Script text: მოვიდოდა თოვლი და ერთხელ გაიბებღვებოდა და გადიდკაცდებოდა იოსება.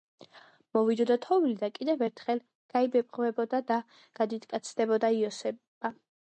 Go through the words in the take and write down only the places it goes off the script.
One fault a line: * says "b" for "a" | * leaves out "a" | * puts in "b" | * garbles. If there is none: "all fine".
* puts in "კიდევ"